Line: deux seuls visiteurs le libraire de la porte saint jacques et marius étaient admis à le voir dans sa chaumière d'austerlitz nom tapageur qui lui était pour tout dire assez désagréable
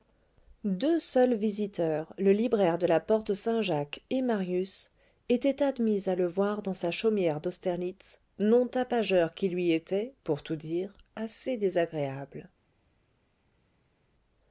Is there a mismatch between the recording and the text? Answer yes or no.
no